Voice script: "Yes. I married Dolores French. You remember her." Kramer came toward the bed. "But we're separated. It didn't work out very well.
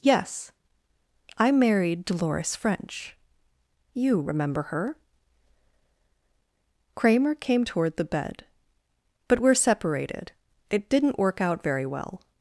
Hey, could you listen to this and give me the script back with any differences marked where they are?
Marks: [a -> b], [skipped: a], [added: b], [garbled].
"Yes. I married Dolores French. You remember her." Kramer came toward the bed. "But we're separated. It didn't work out very well.